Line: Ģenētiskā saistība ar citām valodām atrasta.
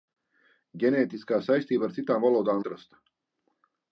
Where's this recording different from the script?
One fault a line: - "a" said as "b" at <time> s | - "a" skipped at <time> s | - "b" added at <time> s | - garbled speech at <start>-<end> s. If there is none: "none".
none